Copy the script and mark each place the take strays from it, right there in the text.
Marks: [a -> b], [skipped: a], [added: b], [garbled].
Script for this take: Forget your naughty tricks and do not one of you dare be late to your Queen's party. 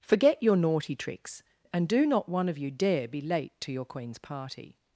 Forget your naughty tricks and do not one of you dare be late to your Queen's party.